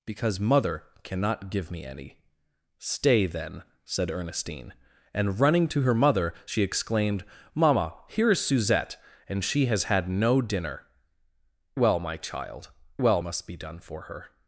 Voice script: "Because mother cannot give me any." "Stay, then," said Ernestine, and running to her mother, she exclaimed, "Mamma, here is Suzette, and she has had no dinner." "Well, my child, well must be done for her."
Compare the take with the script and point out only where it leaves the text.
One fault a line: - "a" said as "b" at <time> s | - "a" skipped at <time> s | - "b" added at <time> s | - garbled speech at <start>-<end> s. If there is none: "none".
none